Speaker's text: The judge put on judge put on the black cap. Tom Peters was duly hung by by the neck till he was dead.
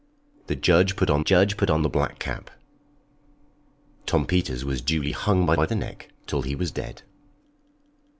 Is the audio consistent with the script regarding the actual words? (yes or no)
yes